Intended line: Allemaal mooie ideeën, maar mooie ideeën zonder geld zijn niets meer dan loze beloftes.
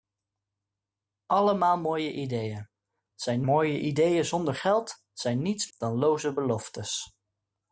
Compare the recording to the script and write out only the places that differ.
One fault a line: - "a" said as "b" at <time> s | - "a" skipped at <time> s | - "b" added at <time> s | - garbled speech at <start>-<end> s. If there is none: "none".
- "maar" said as "zijn" at 3.1 s
- "meer" skipped at 5.7 s